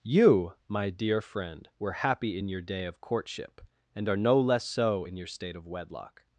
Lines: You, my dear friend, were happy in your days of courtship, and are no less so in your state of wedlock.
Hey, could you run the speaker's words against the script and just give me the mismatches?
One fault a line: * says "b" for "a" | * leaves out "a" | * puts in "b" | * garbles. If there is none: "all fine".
* says "day" for "days"